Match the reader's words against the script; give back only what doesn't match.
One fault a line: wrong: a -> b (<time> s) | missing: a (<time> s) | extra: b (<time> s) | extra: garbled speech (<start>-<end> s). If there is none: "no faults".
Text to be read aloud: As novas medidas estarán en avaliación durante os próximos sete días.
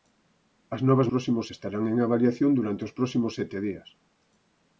wrong: medidas -> próximos (1.1 s)